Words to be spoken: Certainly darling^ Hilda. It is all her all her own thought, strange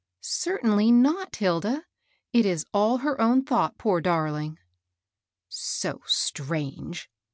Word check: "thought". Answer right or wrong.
wrong